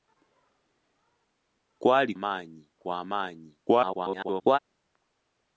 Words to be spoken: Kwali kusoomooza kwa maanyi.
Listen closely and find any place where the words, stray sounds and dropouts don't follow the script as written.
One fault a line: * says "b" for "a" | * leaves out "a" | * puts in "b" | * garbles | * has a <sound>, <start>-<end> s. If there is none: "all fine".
* says "maanyi" for "kusoomooza"
* garbles